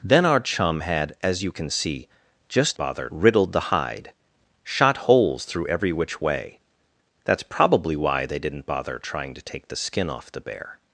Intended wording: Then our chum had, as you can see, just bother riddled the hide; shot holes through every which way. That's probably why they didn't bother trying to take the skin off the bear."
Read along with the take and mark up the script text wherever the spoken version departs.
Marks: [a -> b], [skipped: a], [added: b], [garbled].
Then our chum had, as you can see, just bother riddled the hide; shot holes through every which way. That's probably why they didn't bother trying to take the skin off the bear."